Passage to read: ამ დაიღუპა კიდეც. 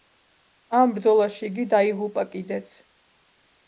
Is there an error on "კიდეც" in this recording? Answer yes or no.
no